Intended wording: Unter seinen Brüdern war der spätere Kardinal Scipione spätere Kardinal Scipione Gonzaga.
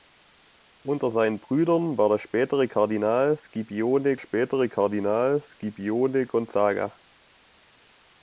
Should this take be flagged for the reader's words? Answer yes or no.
no